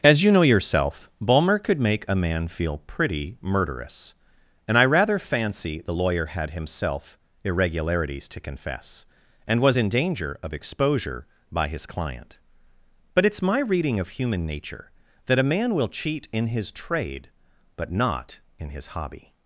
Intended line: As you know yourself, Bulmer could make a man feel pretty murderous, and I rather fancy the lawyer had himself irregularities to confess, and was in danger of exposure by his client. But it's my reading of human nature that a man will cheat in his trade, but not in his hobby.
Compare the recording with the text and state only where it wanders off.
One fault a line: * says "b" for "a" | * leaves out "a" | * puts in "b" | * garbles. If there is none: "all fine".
all fine